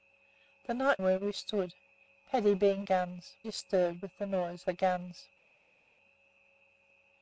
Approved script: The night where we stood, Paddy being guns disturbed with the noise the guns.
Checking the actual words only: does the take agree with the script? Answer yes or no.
yes